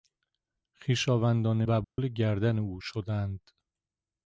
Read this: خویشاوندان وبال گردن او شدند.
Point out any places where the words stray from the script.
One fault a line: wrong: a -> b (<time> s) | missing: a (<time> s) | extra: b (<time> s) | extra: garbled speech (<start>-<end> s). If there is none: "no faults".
no faults